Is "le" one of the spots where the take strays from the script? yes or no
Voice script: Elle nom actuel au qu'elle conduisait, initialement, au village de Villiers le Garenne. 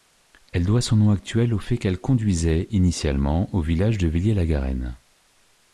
yes